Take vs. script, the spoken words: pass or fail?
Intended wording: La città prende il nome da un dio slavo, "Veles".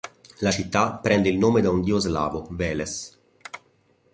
pass